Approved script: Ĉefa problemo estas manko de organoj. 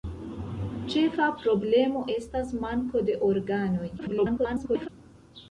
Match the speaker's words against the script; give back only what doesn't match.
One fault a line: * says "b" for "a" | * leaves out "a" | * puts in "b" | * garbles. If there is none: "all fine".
* garbles